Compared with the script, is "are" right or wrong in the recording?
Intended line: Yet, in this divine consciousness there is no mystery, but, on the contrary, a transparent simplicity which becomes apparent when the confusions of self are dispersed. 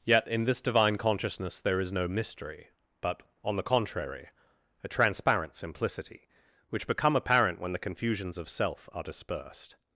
right